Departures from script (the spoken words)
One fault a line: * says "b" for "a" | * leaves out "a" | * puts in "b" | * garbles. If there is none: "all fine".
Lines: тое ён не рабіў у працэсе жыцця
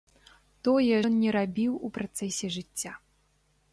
all fine